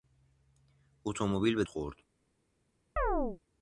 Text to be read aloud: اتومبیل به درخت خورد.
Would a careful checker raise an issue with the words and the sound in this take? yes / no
yes